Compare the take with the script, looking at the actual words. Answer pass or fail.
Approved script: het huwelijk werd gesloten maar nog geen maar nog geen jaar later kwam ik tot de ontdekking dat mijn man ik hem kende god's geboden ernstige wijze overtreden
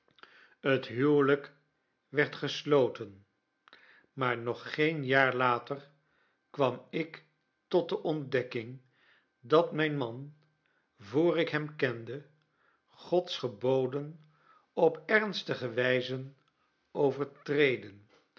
fail